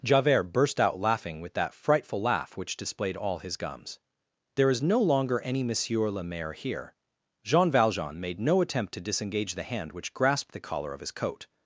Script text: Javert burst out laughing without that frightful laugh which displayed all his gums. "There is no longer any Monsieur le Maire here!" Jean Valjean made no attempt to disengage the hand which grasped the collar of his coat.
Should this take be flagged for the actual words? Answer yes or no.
yes